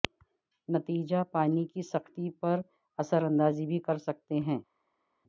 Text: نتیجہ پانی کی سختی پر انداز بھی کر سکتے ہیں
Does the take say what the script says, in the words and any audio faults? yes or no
no